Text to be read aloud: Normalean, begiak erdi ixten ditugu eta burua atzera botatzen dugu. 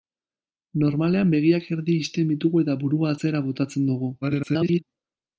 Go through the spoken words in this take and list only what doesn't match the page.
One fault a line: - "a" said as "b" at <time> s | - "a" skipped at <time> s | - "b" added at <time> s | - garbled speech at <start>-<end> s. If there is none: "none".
- garbled speech at 4.2-4.8 s